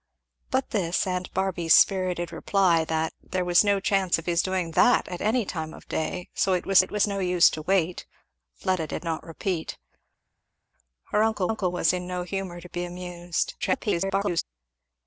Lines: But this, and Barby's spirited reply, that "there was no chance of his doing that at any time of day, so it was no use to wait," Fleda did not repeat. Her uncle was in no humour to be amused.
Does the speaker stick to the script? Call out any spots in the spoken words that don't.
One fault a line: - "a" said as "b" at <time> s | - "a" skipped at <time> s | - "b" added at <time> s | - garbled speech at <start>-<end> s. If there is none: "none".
- "it was" added at 6.8 s
- "uncle" added at 11.5 s
- garbled speech at 13.6-14.4 s